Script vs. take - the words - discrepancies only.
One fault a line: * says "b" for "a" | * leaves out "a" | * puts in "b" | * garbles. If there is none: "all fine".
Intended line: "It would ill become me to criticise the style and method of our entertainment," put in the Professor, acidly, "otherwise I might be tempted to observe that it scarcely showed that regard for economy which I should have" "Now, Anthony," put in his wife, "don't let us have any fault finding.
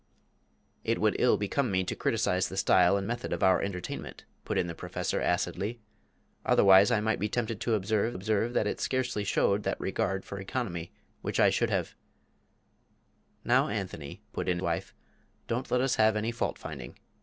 * puts in "observe"
* leaves out "his"